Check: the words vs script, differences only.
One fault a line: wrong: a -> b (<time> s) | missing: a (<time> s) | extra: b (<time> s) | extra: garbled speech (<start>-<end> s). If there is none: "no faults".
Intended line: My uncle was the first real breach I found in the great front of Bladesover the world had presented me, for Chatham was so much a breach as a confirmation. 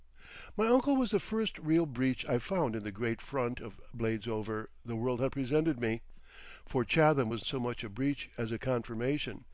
no faults